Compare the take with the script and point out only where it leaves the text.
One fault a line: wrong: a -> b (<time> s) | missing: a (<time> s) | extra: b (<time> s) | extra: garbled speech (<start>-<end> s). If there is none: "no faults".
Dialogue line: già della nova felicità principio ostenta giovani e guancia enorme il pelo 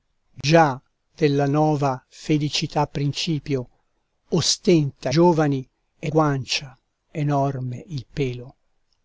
no faults